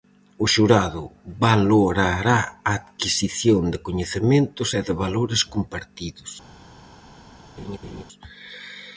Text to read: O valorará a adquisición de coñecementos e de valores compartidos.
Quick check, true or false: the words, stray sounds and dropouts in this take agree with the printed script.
false